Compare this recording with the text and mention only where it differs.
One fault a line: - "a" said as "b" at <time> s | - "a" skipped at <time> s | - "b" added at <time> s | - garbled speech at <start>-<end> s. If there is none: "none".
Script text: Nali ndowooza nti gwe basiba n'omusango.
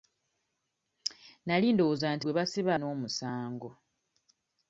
none